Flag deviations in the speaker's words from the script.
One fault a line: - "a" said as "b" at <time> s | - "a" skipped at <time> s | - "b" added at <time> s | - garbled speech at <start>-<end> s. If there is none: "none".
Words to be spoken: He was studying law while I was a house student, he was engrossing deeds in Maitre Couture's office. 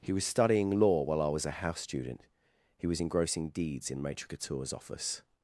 none